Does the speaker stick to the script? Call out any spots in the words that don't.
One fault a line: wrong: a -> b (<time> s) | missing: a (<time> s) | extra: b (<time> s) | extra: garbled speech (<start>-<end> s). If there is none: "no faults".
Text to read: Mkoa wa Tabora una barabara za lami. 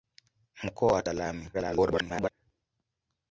missing: Tabora una barabara (1.0 s)
extra: garbled speech (1.5-2.3 s)